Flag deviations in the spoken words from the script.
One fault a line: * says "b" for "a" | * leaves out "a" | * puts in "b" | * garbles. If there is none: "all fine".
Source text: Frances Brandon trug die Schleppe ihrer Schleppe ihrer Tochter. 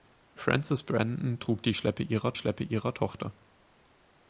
all fine